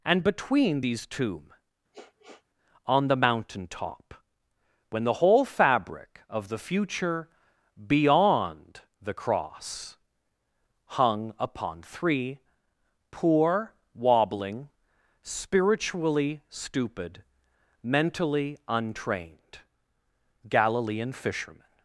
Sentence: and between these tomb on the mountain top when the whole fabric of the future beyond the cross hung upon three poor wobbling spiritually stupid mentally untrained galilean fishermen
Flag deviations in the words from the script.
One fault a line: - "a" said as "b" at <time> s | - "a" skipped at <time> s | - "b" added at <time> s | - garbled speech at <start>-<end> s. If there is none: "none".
none